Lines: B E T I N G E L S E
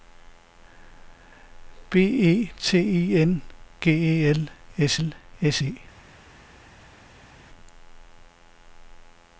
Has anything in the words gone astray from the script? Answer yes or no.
yes